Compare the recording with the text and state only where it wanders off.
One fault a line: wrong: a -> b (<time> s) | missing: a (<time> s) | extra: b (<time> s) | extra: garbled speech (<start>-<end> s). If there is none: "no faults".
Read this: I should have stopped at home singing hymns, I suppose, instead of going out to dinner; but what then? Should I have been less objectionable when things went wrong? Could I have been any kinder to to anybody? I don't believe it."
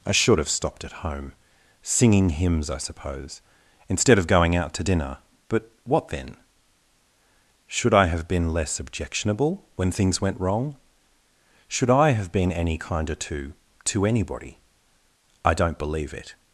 wrong: Could -> Should (11.7 s)